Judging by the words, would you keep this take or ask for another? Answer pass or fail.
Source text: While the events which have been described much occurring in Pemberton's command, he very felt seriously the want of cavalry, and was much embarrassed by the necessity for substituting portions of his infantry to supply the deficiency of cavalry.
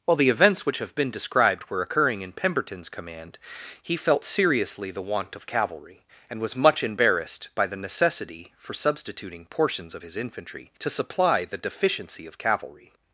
fail